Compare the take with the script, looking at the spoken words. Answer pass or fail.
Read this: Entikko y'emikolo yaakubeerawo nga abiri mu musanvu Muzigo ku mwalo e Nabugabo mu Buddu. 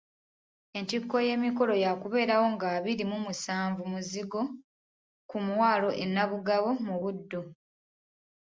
pass